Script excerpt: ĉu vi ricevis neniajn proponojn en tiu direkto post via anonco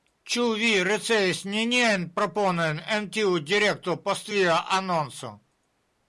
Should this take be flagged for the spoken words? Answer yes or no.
no